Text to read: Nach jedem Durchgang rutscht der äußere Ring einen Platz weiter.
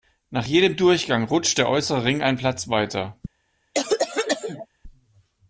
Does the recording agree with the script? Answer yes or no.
yes